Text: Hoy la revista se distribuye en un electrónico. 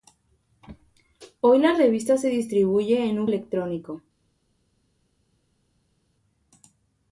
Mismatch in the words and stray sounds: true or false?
false